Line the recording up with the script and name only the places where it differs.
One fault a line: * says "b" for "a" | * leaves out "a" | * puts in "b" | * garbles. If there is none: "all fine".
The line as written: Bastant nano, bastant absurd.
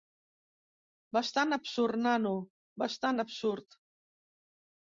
* puts in "absurd"